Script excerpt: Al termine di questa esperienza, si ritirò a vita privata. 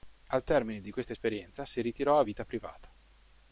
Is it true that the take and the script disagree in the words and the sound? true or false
false